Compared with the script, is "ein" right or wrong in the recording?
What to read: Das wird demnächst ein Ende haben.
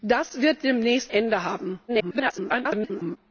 wrong